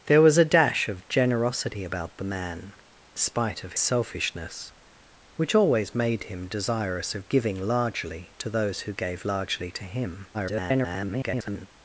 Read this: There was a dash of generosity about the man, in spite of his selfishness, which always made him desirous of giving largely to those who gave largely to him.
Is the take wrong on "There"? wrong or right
right